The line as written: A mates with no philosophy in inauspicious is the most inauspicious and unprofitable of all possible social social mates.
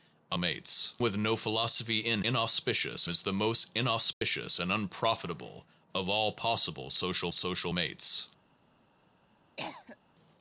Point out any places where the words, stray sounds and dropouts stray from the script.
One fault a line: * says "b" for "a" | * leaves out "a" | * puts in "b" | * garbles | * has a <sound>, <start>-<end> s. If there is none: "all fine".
* has a dropout, 4.1-4.2 s
* has a cough, 9.6-10.0 s